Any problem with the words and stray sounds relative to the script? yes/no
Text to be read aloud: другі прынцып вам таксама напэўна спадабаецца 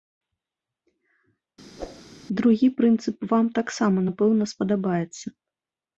yes